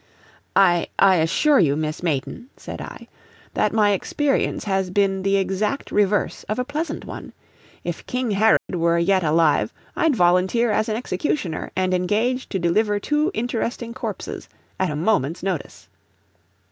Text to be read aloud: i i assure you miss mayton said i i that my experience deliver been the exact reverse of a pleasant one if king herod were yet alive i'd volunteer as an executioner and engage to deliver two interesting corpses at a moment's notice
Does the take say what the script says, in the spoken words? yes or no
no